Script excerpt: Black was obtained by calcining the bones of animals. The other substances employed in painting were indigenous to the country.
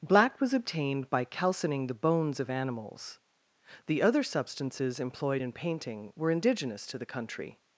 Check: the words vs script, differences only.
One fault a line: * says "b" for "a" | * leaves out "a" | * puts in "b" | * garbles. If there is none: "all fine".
all fine